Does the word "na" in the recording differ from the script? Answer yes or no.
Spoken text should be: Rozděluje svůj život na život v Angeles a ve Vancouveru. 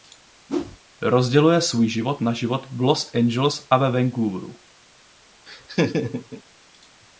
no